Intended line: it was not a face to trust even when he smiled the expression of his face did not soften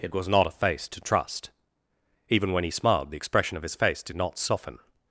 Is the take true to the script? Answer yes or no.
yes